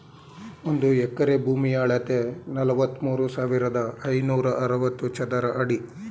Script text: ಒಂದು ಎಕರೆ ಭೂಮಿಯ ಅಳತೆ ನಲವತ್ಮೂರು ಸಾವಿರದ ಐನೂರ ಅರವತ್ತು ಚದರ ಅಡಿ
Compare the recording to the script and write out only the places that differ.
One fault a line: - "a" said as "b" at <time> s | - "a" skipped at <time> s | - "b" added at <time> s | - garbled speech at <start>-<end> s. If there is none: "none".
none